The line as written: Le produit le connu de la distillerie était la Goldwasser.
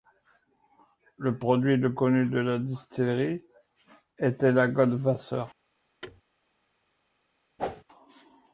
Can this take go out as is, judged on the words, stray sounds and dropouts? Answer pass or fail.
fail